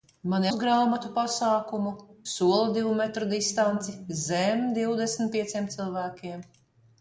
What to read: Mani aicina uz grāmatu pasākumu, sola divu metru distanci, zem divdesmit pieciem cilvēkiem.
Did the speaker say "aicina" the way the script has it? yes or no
no